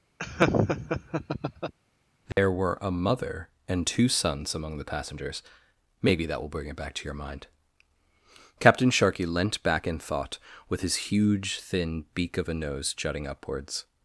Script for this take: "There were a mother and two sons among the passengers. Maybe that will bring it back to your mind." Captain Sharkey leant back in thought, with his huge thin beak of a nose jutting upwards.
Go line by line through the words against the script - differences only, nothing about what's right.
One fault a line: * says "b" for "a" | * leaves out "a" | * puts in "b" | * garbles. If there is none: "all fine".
all fine